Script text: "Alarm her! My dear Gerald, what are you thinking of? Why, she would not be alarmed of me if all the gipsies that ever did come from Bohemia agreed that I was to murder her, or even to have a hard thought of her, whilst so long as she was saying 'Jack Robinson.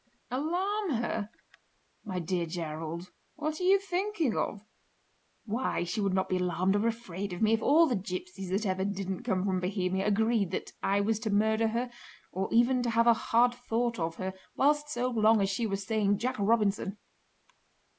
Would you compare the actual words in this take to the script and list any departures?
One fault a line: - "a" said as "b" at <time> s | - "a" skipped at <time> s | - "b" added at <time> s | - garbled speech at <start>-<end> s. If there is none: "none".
- "or afraid" added at 6.8 s
- "did" said as "didn't" at 8.8 s